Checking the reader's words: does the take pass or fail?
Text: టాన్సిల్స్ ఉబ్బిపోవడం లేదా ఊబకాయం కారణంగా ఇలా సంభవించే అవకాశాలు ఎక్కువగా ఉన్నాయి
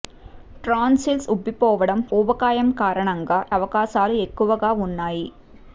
fail